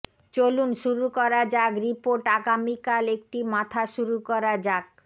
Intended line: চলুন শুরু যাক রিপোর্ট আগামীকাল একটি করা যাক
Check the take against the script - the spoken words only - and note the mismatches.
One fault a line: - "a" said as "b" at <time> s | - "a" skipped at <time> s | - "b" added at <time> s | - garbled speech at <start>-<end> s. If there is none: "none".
- "করা" added at 1.2 s
- "মাথা শুরু" added at 3.5 s